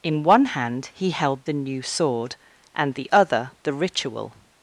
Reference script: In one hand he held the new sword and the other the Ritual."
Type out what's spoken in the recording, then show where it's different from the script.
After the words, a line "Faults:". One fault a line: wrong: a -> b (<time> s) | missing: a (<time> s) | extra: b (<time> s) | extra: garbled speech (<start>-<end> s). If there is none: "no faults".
In one hand he held the new sword and the other the Ritual."
Faults:
no faults